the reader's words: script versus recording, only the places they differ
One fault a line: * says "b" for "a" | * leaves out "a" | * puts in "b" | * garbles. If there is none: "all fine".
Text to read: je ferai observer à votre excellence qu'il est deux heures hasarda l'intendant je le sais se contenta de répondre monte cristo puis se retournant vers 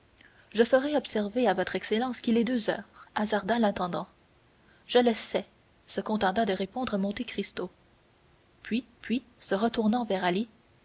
* puts in "puis"